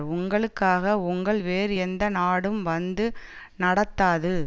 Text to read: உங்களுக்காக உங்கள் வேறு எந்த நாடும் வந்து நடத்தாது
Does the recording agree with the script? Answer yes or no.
yes